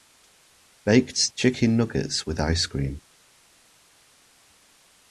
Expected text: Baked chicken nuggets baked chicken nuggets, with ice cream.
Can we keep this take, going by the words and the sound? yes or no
no